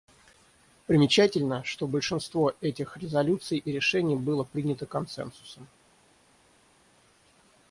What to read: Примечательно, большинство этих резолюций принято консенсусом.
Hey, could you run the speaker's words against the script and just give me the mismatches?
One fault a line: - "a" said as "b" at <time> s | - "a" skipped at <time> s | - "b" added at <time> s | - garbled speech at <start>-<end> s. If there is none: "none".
- "что" added at 1.6 s
- "и решений было" added at 3.6 s